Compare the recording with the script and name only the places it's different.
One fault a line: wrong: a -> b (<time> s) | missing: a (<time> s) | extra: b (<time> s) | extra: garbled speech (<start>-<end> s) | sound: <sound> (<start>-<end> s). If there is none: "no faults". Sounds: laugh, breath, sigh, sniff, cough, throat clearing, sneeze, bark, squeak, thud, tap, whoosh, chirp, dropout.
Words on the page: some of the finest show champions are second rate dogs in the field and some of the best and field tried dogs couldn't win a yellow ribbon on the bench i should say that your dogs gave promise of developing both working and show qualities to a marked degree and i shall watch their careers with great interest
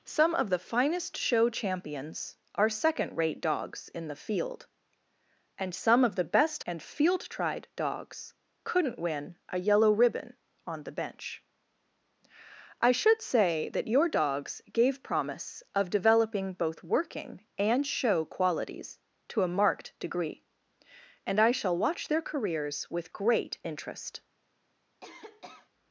sound: cough (25.0-25.7 s)